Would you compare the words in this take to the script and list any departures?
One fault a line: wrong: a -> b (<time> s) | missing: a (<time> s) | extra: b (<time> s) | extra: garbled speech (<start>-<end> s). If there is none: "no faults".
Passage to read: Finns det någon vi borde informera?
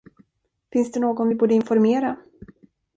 no faults